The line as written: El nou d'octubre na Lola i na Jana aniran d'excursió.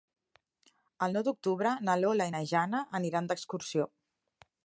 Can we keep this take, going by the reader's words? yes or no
yes